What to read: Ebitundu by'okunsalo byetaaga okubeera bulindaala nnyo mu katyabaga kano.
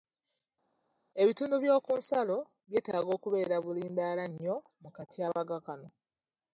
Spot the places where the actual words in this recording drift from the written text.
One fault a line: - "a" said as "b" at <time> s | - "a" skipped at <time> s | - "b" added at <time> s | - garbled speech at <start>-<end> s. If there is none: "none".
none